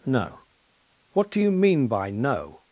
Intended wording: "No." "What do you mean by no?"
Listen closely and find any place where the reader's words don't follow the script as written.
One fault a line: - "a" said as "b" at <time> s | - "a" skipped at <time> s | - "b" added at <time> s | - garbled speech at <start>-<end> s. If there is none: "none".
none